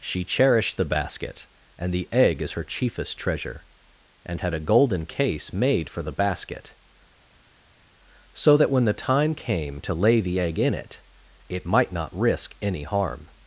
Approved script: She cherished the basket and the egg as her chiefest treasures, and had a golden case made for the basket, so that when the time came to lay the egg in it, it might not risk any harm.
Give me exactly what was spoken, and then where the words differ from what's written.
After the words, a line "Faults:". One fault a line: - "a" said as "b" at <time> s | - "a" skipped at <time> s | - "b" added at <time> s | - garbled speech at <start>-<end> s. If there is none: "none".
She cherished the basket and the egg as her chiefest treasure, and had a golden case made for the basket, so that when the time came to lay the egg in it, it might not risk any harm.
Faults:
- "treasures" said as "treasure" at 3.2 s